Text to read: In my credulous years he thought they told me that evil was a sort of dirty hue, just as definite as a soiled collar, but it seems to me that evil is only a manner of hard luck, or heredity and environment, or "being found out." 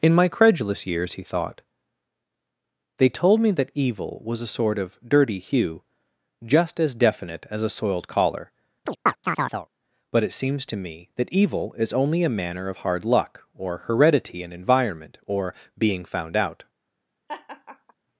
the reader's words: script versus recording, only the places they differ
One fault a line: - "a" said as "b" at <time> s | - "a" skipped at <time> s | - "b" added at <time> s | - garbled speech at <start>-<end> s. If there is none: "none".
none